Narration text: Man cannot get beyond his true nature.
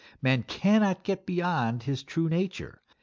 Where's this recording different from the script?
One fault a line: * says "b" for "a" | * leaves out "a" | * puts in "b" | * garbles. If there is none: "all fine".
all fine